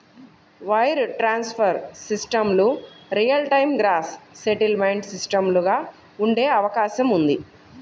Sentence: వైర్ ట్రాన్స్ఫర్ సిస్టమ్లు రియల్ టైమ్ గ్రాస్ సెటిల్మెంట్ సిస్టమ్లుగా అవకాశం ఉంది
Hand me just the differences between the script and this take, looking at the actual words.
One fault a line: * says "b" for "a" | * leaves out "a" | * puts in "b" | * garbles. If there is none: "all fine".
* puts in "ఉండే"